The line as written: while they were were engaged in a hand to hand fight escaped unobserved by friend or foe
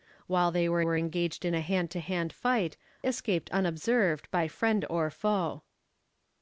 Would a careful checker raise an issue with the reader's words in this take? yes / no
no